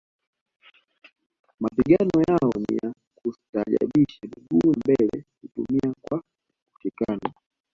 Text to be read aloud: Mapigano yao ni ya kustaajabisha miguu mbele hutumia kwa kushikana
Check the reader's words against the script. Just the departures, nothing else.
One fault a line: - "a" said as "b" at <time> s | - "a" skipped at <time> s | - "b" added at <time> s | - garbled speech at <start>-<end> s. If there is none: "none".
none